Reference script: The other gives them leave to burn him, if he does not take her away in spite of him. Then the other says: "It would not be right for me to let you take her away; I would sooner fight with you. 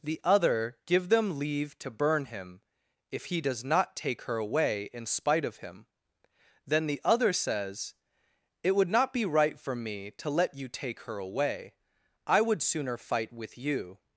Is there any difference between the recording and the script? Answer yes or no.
yes